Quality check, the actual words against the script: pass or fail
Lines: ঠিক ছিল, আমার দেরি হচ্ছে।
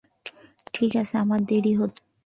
fail